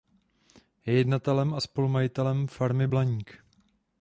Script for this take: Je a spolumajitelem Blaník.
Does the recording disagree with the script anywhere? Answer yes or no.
yes